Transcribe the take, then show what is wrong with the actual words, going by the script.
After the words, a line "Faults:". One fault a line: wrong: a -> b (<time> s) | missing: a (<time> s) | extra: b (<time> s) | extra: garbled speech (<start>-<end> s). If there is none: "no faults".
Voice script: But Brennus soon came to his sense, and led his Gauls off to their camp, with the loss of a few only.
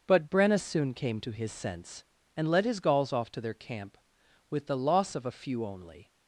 But Brennus soon came to his sense, and led his Gauls off to their camp, with the loss of a few only.
Faults:
no faults